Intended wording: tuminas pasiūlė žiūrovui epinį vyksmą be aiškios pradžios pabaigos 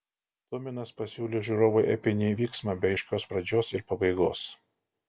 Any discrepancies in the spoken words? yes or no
yes